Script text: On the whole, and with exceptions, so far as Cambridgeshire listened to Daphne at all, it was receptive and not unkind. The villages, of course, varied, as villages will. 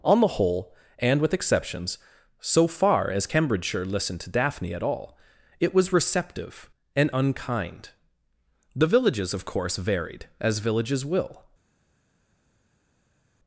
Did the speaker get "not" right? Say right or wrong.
wrong